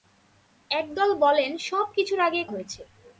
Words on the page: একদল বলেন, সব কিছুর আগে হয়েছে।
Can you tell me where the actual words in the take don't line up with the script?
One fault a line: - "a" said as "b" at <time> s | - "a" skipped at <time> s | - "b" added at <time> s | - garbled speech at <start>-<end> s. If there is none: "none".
none